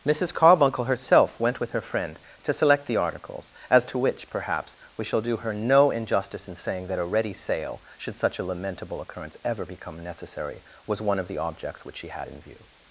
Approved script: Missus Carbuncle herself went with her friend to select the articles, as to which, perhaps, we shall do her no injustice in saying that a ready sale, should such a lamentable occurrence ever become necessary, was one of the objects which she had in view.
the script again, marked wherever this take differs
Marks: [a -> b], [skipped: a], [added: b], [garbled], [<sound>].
Missus Carbuncle herself went with her friend to select the articles, as to which, perhaps, we shall do her no injustice in saying that a ready sale, should such a lamentable occurrence ever become necessary, was one of the objects which she had in view.